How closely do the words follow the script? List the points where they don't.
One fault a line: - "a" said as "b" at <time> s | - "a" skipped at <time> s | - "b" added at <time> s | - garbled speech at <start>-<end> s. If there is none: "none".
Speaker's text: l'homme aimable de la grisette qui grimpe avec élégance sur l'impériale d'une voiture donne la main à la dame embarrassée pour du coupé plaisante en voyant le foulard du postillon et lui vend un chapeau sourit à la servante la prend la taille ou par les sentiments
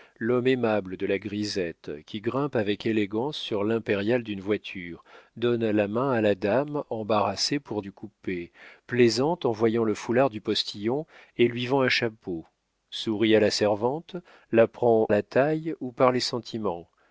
none